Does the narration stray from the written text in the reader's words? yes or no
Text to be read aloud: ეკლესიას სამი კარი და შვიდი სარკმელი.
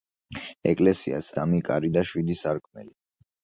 no